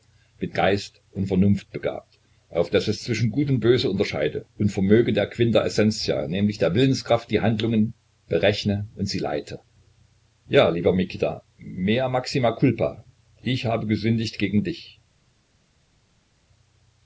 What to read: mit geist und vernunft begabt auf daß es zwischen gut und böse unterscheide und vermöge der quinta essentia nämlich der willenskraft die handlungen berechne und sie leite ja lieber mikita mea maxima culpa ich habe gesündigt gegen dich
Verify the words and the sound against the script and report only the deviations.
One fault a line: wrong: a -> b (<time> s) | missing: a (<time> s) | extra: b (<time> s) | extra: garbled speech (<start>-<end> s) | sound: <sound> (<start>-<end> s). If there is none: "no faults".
no faults